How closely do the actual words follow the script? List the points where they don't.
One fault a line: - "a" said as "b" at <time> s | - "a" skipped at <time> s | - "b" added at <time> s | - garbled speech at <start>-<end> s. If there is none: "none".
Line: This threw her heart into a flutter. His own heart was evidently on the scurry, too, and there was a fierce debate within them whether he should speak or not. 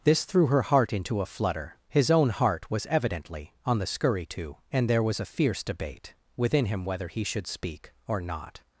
- "them" said as "him" at 6.7 s